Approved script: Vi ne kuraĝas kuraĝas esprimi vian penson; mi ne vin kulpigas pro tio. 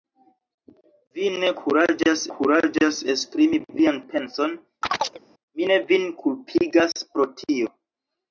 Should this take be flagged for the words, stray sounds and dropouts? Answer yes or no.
yes